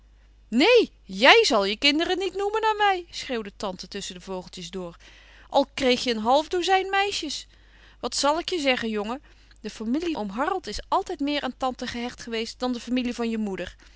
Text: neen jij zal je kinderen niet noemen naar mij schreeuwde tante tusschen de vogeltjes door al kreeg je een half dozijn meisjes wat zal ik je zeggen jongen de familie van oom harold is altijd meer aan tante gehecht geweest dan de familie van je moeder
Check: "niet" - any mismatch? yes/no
no